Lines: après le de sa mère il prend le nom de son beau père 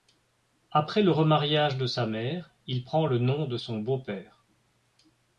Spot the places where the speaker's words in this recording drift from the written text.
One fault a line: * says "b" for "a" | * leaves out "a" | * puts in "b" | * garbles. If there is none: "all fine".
* puts in "remariage"